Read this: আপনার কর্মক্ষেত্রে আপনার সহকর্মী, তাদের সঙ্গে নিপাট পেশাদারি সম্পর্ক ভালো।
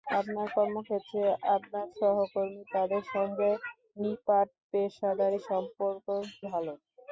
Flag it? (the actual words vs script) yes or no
no